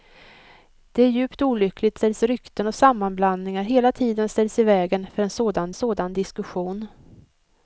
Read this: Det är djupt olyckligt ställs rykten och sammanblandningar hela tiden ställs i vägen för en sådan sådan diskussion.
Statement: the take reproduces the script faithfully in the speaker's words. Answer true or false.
true